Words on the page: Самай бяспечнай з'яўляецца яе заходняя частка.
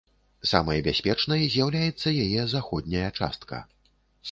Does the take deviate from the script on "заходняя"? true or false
false